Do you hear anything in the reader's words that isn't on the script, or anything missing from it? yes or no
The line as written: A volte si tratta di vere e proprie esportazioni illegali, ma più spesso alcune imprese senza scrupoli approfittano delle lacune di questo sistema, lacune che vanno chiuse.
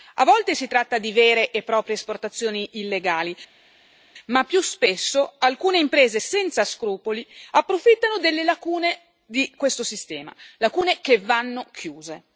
no